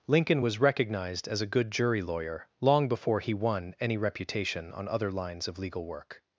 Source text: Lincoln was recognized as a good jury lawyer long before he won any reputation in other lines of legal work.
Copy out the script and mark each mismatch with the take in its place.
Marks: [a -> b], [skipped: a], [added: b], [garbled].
Lincoln was recognized as a good jury lawyer long before he won any reputation [in -> on] other lines of legal work.